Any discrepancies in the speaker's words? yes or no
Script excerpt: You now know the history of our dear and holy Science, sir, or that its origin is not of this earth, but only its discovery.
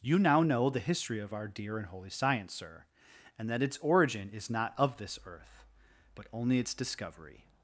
yes